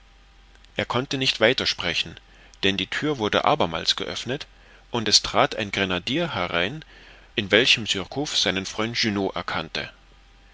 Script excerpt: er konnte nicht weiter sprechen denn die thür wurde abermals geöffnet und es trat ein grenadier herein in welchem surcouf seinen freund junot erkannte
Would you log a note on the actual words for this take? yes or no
no